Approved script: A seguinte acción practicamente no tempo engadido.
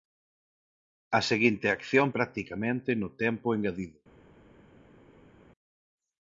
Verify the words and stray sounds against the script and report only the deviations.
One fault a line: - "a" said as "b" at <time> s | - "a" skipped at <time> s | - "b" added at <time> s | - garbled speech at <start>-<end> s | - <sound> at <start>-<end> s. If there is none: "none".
none